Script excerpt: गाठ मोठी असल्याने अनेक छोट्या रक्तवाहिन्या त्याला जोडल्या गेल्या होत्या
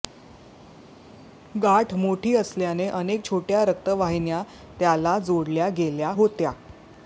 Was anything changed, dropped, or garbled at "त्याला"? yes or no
no